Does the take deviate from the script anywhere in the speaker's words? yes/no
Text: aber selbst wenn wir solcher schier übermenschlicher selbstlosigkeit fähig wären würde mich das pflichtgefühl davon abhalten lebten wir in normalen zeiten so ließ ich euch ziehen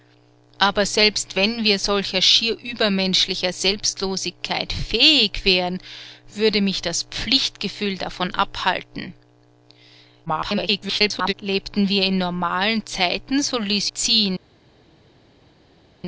yes